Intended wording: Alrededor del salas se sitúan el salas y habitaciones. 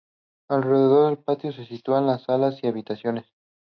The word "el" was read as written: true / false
false